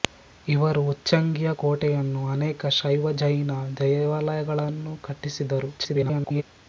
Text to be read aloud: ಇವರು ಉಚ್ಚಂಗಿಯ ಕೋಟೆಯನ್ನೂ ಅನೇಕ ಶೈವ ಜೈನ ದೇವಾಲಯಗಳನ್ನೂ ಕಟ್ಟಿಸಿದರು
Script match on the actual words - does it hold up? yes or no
no